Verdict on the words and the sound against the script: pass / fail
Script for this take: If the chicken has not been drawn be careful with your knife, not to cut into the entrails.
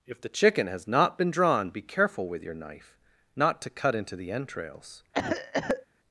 fail